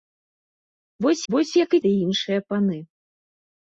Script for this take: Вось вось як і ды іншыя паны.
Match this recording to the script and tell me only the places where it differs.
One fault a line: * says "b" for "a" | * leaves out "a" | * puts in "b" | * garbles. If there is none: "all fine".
all fine